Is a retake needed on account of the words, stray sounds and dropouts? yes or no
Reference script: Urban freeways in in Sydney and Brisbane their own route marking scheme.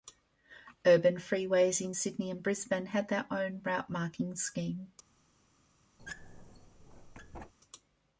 yes